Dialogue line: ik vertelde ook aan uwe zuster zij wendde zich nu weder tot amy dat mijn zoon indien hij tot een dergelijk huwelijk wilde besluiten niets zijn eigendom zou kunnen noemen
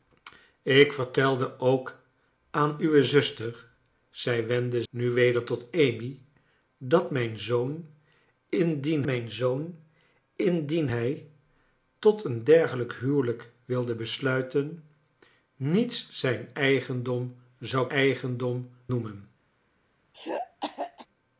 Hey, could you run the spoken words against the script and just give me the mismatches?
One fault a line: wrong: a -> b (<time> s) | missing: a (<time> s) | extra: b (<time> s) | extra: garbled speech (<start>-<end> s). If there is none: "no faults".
missing: zich (4.8 s)
extra: mijn zoon indien (9.0 s)
wrong: kunnen -> eigendom (17.9 s)